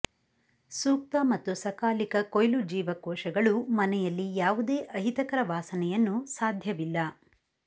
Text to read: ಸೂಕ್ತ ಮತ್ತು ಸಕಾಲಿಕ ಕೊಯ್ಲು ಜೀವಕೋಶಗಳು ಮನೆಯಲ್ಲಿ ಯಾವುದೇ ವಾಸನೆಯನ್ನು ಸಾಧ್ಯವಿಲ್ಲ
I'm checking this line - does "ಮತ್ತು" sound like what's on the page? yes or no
yes